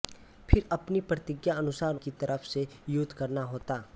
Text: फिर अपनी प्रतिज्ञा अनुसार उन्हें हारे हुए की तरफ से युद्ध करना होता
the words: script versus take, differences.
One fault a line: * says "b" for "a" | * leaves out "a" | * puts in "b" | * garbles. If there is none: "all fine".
* leaves out "उन्हें हारे हुए"